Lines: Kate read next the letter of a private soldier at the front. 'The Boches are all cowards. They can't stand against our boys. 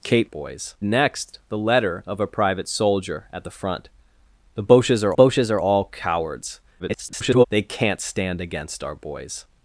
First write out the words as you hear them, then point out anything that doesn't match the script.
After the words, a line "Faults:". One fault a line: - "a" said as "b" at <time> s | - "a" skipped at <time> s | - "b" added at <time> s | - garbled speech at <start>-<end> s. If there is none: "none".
Kate boys next the letter of a private soldier at the front. 'The Boches are Boches are all cowards. [garbled] They can't stand against our boys.
Faults:
- "read" said as "boys" at 0.2 s
- "Boches are" added at 5.1 s
- garbled speech at 6.8-7.5 s